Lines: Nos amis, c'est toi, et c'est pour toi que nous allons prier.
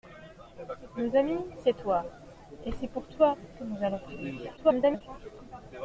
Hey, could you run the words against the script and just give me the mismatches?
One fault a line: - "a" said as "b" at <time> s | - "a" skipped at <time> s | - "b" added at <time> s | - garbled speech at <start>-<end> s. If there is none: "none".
- garbled speech at 4.6-5.0 s